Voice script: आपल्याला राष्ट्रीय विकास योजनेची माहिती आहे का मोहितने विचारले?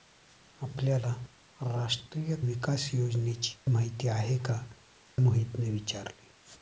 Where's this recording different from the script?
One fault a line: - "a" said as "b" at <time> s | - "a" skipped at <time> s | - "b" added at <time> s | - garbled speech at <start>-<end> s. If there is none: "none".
none